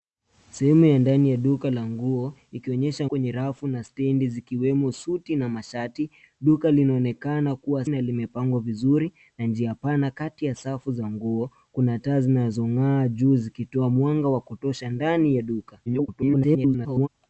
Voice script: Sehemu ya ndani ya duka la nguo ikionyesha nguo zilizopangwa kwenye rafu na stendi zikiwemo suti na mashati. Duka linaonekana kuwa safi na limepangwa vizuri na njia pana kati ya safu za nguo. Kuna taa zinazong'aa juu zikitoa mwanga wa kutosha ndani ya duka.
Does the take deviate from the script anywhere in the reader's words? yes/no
yes